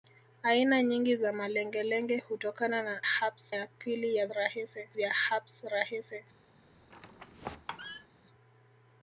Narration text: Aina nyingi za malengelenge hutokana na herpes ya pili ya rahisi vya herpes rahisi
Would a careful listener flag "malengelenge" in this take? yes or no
no